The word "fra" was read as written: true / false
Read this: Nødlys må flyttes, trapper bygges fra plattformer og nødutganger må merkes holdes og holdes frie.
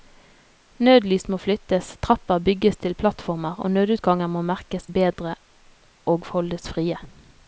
false